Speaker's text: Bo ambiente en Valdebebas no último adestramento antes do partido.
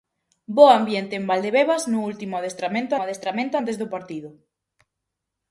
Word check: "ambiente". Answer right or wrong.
right